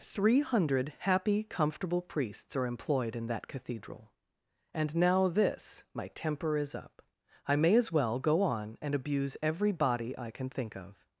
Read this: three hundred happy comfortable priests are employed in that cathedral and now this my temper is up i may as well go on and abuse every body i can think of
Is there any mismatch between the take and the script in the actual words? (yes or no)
no